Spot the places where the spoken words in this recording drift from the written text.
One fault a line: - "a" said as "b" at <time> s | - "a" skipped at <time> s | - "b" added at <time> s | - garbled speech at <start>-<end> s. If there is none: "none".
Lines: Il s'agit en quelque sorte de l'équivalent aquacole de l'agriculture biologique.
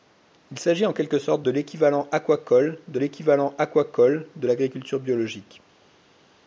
- "l'équivalent aquacole de" added at 3.0 s